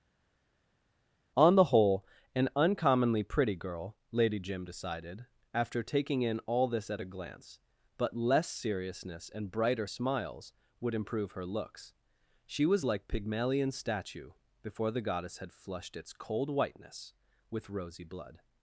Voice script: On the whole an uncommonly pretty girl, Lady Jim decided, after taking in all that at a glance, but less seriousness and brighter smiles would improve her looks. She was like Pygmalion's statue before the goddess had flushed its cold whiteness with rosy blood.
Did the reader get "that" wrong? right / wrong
wrong